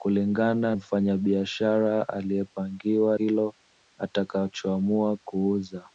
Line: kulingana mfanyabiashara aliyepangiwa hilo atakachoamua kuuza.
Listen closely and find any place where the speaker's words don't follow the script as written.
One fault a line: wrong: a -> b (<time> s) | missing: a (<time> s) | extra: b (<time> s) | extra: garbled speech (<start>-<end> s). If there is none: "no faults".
no faults